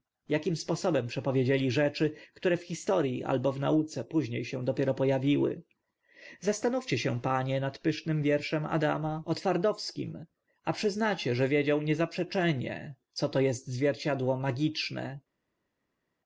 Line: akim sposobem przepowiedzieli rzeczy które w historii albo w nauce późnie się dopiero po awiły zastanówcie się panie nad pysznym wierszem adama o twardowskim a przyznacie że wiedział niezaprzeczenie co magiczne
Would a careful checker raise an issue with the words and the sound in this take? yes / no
yes